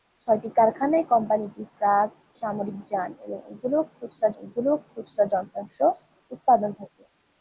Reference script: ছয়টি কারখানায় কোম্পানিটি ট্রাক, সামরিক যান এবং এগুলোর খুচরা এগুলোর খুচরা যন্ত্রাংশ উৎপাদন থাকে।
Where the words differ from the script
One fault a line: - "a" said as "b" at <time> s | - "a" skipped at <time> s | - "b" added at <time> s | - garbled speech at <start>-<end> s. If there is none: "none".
none